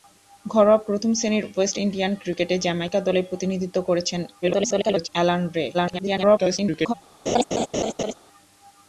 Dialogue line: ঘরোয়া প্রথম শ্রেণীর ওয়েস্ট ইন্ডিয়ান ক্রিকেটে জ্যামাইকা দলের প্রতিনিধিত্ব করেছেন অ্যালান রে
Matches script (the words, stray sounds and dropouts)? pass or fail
fail